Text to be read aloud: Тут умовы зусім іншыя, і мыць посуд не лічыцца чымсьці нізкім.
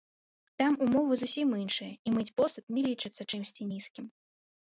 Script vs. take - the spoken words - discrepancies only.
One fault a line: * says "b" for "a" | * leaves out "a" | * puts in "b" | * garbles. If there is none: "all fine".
* says "Там" for "Тут"